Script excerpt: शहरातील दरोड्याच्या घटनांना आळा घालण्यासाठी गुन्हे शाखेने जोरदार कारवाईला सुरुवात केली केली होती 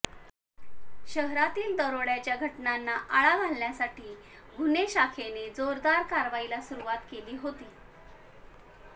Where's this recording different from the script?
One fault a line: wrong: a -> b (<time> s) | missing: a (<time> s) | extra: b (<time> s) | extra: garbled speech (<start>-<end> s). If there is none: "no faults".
missing: केली (7.4 s)